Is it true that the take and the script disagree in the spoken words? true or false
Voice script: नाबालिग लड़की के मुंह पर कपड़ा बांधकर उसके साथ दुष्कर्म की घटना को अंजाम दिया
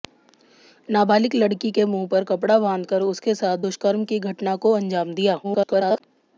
true